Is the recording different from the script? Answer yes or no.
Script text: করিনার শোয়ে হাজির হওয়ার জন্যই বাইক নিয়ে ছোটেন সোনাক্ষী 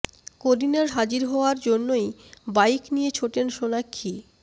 yes